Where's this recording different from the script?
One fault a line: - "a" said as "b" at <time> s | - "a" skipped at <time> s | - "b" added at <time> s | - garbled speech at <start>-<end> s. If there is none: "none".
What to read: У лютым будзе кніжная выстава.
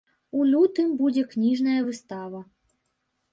none